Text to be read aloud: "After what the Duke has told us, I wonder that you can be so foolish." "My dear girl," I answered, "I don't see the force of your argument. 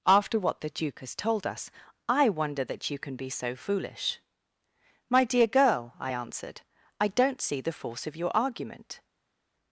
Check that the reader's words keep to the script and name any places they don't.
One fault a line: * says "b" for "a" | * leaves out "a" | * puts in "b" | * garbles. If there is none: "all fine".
all fine